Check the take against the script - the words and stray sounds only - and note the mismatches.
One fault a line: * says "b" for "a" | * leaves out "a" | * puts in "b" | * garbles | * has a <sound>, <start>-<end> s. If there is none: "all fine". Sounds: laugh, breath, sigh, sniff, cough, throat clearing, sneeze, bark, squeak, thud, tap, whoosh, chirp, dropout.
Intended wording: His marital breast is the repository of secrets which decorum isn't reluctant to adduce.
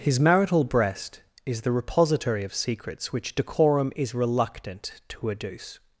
* says "is" for "isn't"